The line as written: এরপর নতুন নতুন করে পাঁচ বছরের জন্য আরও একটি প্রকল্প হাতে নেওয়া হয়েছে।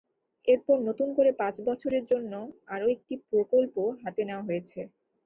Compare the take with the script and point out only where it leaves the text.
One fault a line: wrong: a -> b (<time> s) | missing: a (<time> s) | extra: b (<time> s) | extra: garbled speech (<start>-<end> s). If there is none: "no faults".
missing: নতুন (1.1 s)